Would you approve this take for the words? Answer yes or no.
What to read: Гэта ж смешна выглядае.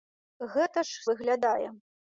no